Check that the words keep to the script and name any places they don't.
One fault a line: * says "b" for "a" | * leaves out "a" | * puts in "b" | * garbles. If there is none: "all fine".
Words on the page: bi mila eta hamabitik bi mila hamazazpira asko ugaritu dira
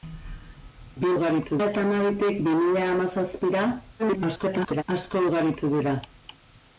* says "ugaritu" for "mila"
* garbles